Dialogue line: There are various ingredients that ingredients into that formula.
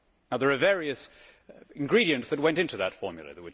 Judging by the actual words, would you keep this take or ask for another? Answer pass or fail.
fail